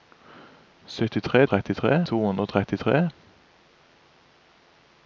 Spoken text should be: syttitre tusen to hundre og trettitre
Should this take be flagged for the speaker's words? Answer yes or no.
yes